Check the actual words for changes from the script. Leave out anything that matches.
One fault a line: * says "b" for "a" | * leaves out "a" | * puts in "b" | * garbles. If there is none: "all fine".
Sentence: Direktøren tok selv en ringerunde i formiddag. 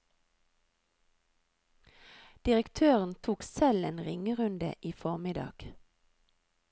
all fine